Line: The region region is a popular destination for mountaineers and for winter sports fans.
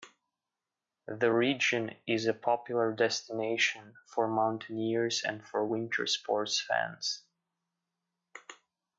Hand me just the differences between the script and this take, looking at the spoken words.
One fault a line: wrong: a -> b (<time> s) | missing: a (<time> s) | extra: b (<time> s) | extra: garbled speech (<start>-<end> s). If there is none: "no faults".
missing: region (2.0 s)